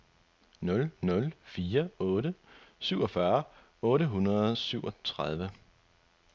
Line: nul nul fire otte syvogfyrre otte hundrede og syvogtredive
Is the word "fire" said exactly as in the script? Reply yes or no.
yes